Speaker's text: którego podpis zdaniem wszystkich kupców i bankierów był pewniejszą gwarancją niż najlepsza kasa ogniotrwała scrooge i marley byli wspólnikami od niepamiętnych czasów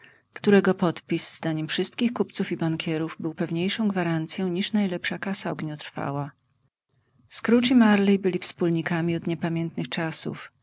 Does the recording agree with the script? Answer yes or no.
yes